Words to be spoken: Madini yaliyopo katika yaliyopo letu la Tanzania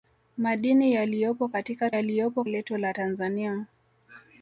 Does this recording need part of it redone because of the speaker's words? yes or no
no